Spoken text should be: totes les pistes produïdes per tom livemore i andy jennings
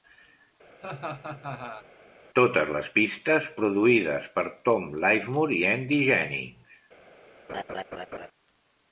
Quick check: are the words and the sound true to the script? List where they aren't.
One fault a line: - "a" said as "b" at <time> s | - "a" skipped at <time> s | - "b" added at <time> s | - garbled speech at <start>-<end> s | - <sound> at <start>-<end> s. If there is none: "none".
- laugh at 0.8-1.9 s
- laugh at 7.5-8.3 s